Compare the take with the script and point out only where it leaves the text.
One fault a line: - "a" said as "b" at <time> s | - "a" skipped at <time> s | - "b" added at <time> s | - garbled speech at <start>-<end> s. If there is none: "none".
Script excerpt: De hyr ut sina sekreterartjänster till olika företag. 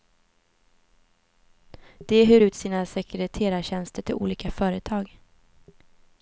none